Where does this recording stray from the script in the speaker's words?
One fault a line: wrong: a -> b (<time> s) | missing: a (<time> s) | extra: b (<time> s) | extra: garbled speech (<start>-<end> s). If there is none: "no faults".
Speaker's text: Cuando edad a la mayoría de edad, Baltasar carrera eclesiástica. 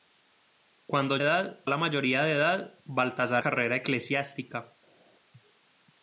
no faults